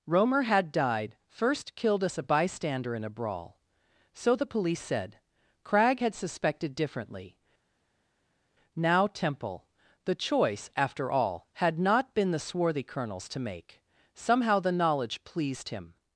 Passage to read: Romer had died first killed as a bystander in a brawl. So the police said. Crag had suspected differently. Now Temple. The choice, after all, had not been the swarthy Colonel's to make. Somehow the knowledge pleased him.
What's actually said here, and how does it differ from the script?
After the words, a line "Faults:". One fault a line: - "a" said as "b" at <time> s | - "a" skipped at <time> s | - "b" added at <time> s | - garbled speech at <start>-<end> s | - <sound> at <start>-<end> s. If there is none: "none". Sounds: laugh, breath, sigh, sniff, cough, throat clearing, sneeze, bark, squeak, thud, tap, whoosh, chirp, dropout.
Romer had died first killed us a bystander in a brawl. So the police said. Crag had suspected differently. Now Temple. The choice, after all, had not been the swarthy Colonel's to make. Somehow the knowledge pleased him.
Faults:
- "as" said as "us" at 2.0 s